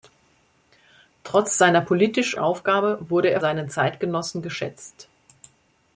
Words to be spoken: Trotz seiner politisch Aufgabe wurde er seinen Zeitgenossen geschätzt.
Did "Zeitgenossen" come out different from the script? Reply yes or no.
no